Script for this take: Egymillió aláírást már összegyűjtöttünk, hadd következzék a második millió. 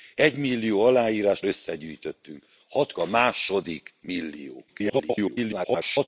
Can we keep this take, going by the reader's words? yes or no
no